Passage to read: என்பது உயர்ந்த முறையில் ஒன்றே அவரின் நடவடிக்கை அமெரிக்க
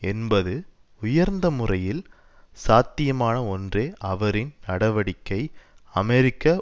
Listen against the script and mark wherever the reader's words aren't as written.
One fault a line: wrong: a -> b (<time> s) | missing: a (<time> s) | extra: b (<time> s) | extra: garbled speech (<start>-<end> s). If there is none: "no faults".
extra: சாத்தியமான (2.6 s)